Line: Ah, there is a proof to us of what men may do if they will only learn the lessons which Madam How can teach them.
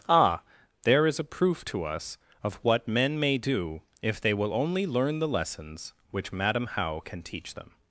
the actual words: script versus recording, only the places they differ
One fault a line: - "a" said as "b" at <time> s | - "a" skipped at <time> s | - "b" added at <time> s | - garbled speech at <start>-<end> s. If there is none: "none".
none